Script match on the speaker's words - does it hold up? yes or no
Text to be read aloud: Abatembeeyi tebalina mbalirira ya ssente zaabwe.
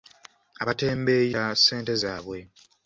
no